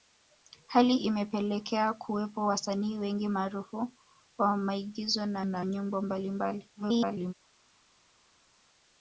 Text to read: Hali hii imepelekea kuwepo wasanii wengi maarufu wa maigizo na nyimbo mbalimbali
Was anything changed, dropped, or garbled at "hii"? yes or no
yes